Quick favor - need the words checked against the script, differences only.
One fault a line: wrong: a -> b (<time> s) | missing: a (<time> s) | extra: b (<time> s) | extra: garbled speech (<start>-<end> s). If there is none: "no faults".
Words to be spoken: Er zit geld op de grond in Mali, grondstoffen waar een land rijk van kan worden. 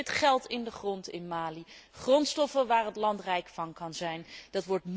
wrong: op -> in (0.5 s)
wrong: een -> het (2.9 s)